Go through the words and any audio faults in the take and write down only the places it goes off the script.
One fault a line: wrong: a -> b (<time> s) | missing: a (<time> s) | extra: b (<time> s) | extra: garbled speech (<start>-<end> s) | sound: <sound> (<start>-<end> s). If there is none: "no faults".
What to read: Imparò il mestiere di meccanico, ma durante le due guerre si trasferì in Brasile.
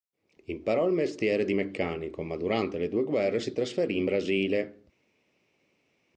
no faults